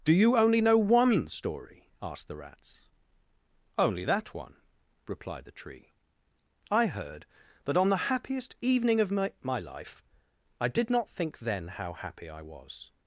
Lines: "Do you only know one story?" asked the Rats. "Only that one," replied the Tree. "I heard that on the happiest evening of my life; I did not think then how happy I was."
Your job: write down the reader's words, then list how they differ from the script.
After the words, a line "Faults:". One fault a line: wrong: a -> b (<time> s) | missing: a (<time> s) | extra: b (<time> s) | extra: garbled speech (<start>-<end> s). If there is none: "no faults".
"Do you only know one story?" asked the Rats. "Only that one," replied the Tree. "I heard that on the happiest evening of my my life; I did not think then how happy I was."
Faults:
extra: my (9.4 s)